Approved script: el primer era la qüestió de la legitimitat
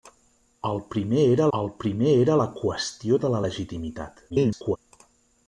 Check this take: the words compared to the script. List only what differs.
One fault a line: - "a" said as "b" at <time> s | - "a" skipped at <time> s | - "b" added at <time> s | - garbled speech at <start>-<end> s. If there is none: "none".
- "el primer era" added at 1.6 s
- garbled speech at 4.3-4.8 s